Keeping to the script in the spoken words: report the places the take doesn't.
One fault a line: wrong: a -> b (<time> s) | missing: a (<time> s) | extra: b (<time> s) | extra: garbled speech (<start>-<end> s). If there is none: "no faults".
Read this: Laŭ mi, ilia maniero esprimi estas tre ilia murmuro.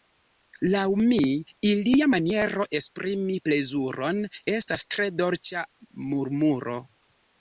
extra: plezuron (3.5 s)
wrong: ilia -> dolĉa (5.2 s)